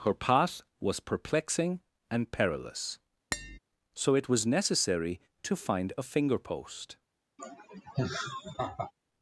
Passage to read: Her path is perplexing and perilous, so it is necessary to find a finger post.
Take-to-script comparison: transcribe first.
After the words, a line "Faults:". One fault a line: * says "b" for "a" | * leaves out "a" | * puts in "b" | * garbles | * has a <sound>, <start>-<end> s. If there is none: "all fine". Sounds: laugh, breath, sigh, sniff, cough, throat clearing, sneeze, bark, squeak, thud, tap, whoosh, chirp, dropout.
Her path was perplexing and perilous, so it was necessary to find a finger post.
Faults:
* says "was" for "is"
* has a tap, 3.3-3.6 s
* says "was" for "is"
* has a laugh, 7.4-8.9 s